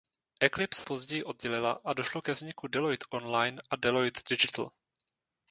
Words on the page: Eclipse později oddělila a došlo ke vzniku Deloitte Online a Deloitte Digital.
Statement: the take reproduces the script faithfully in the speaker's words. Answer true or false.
true